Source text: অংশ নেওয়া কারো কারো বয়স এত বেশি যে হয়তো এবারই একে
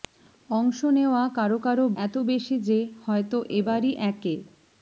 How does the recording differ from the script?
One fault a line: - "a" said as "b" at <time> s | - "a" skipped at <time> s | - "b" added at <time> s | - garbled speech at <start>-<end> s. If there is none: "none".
- "বয়স" skipped at 1.9 s